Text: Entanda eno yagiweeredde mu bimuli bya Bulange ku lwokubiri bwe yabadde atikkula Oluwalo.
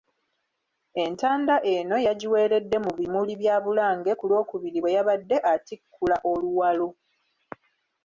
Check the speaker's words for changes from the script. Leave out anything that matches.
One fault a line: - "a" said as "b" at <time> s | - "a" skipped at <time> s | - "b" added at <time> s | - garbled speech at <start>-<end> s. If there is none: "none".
none